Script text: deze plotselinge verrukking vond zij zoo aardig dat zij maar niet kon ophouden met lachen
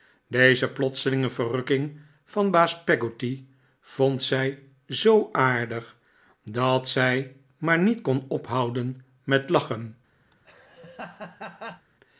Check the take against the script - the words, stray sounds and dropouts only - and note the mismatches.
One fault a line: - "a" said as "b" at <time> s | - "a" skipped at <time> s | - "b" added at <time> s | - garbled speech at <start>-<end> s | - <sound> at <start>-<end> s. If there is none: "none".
- "van baas peggotty" added at 2.2 s
- laugh at 10.3-11.9 s